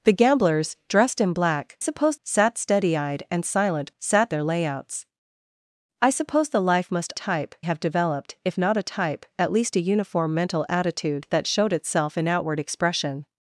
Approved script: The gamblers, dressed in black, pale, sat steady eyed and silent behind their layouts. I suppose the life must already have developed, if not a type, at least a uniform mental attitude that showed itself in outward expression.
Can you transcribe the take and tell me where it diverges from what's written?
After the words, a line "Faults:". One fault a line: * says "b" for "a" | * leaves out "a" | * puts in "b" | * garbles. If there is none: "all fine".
The gamblers, dressed in black, suppose, sat steady eyed and silent sat their layouts. I suppose the life must type have developed, if not a type, at least a uniform mental attitude that showed itself in outward expression.
Faults:
* says "suppose" for "pale"
* says "sat" for "behind"
* says "type" for "already"